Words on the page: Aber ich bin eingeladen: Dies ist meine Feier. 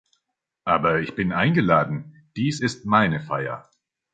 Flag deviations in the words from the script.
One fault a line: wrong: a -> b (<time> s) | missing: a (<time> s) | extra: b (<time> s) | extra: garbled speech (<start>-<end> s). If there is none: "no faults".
no faults